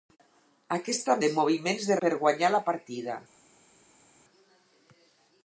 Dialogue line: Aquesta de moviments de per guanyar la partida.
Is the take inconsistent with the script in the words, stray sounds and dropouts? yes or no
no